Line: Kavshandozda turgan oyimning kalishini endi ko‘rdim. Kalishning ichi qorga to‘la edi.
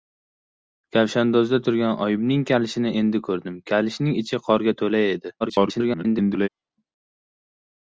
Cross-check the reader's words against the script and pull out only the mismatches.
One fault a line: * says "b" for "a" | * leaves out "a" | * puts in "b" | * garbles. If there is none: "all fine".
* garbles